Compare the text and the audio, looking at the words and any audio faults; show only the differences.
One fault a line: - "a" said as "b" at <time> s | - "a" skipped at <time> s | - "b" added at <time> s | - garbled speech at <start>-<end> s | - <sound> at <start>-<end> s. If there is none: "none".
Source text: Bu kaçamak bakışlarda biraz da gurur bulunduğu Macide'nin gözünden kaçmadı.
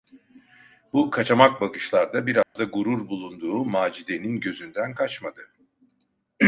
- dropout at 2.4-2.6 s